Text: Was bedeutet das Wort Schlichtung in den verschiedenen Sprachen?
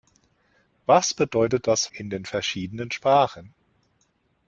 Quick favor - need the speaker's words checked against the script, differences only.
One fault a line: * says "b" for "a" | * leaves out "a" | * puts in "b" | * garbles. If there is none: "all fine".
* leaves out "Wort Schlichtung"